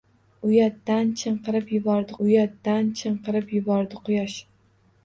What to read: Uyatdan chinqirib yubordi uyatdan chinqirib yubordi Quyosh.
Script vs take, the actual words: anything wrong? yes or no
no